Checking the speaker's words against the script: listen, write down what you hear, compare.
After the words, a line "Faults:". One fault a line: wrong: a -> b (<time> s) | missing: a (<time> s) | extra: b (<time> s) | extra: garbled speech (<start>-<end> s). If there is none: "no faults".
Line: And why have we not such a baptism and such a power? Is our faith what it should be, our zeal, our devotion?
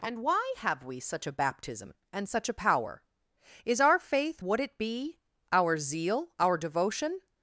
And why have we such a baptism and such a power? Is our faith what it be, our zeal, our devotion?
Faults:
missing: not (1.0 s)
missing: should (4.8 s)